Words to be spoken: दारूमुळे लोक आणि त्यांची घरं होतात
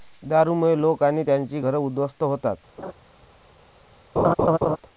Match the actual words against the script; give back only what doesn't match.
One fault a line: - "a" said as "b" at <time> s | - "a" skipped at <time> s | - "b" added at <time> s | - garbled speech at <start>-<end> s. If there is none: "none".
- "उद्ध्वस्त" added at 1.8 s